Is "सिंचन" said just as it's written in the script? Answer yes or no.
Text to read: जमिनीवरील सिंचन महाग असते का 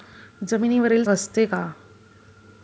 no